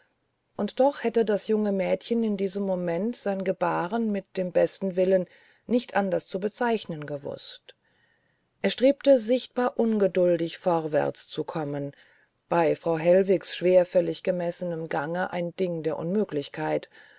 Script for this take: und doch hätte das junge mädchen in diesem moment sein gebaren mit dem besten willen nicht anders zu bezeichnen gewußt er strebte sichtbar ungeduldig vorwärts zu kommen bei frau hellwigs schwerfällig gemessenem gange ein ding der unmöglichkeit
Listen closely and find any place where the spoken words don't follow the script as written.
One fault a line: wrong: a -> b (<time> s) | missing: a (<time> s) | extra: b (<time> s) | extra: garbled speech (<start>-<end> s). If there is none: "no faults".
no faults